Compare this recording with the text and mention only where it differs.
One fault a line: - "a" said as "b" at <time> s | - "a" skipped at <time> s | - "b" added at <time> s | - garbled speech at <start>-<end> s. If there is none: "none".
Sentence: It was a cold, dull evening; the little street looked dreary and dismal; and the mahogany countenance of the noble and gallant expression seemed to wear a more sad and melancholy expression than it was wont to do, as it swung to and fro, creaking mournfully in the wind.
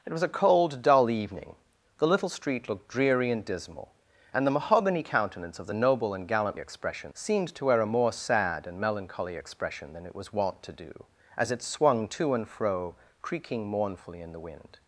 none